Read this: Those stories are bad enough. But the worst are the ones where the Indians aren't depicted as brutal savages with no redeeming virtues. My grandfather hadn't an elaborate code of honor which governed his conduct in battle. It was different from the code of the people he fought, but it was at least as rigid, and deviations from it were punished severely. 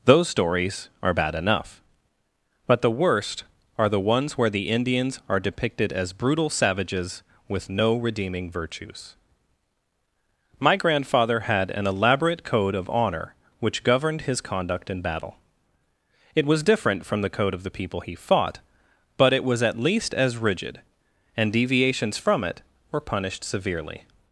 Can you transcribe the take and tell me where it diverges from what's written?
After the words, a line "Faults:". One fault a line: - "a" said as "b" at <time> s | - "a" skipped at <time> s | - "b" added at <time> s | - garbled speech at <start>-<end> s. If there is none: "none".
Those stories are bad enough. But the worst are the ones where the Indians are depicted as brutal savages with no redeeming virtues. My grandfather had an elaborate code of honor which governed his conduct in battle. It was different from the code of the people he fought, but it was at least as rigid, and deviations from it were punished severely.
Faults:
- "aren't" said as "are" at 5.3 s
- "hadn't" said as "had" at 11.4 s